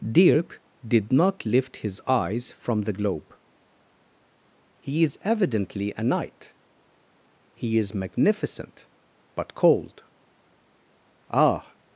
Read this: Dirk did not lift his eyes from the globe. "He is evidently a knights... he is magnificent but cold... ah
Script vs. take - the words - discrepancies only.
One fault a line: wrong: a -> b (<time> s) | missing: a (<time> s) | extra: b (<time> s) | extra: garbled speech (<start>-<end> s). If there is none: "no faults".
wrong: knights -> knight (6.0 s)